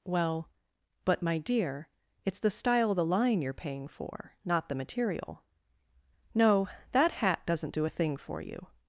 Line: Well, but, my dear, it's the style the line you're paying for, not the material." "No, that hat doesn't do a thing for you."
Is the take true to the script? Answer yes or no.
no